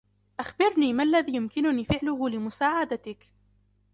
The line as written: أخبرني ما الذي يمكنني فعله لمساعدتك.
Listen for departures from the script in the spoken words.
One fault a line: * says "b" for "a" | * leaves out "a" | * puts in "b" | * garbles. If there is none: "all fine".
all fine